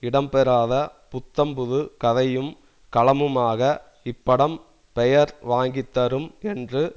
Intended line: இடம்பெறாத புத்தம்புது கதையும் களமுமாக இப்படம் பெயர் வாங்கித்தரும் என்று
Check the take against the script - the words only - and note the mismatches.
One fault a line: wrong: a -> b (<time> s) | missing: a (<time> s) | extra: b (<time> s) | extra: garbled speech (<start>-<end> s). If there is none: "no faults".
no faults